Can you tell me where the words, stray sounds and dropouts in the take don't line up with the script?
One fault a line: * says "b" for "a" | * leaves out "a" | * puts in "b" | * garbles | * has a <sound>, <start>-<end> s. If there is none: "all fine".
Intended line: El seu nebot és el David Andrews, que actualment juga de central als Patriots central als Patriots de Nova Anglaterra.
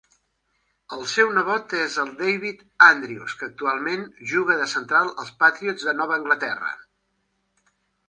* leaves out "central als Patriots"